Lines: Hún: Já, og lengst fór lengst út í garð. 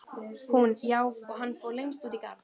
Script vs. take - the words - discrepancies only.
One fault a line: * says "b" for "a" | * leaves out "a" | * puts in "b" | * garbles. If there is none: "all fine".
* says "hann" for "lengst"